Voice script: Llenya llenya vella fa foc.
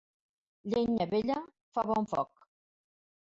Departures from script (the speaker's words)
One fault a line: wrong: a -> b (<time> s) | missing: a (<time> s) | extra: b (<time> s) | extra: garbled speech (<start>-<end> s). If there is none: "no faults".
missing: llenya (1.1 s)
extra: bon (1.9 s)